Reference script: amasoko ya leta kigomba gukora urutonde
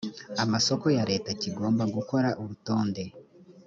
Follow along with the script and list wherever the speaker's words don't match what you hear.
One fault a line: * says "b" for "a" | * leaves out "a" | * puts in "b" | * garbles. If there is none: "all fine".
all fine